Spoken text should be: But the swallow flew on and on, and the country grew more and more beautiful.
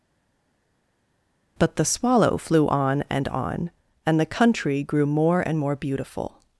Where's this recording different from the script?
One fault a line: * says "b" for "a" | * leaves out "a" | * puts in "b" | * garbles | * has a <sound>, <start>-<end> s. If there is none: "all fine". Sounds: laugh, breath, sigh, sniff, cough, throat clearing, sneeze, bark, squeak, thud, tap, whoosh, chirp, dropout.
all fine